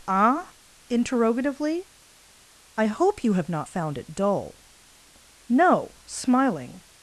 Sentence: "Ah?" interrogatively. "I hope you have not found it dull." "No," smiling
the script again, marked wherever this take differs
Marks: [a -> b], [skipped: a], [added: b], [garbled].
"Ah?" interrogatively. "I hope you have not found it dull." "No," smiling